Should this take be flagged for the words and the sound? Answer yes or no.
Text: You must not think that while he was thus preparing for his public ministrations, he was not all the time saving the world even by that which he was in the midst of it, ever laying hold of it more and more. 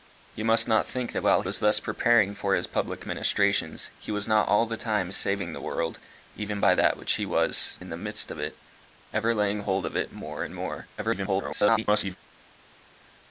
yes